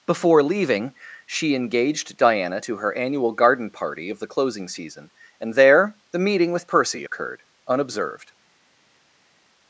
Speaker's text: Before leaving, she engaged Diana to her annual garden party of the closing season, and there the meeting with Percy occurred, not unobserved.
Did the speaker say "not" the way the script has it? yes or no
no